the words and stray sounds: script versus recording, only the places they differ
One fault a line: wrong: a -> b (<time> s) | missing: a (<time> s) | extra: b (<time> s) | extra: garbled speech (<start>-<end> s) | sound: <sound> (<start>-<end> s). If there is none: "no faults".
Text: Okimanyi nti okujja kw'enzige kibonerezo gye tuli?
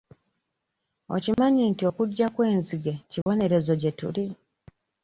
sound: dropout (1.3-1.4 s)
sound: dropout (3.2-3.3 s)